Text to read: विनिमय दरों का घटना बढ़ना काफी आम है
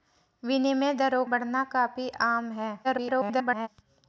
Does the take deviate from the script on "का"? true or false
true